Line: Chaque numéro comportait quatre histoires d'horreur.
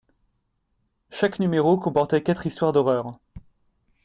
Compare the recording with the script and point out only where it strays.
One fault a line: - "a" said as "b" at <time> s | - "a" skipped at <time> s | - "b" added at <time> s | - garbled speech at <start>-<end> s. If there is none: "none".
none